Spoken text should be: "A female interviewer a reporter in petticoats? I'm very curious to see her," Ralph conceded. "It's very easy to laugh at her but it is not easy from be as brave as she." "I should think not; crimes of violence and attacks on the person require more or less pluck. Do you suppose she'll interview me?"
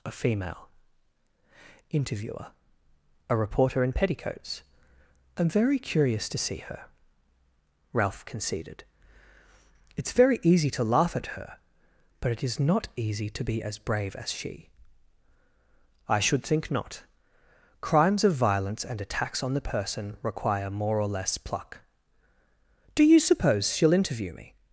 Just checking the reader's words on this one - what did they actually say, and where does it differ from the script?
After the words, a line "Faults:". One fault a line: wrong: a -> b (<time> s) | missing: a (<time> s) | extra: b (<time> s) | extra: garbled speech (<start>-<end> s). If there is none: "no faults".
"A female interviewer a reporter in petticoats? I'm very curious to see her," Ralph conceded. "It's very easy to laugh at her but it is not easy to be as brave as she." "I should think not; crimes of violence and attacks on the person require more or less pluck. Do you suppose she'll interview me?"
Faults:
wrong: from -> to (13.3 s)